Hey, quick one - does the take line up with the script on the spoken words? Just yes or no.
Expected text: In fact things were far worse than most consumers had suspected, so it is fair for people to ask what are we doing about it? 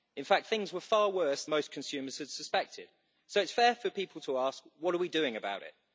no